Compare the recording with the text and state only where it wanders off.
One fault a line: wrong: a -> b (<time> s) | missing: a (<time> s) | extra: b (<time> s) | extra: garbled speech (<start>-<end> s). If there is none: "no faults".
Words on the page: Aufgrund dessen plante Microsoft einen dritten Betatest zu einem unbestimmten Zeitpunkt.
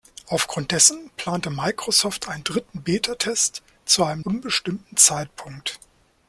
no faults